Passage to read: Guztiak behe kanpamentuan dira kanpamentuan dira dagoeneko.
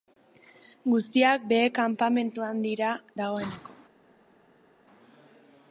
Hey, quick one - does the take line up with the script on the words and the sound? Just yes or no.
no